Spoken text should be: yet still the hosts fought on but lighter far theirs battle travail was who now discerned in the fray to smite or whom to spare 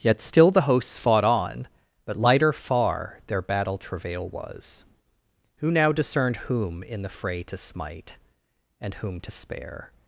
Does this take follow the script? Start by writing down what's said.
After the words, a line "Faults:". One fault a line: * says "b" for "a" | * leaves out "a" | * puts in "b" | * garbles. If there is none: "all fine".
yet still the hosts fought on but lighter far their battle travail was who now discerned whom in the fray to smite and whom to spare
Faults:
* says "their" for "theirs"
* puts in "whom"
* says "and" for "or"